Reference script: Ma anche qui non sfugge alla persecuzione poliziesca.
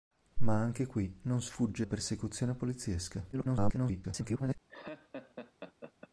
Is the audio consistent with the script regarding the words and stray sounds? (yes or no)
no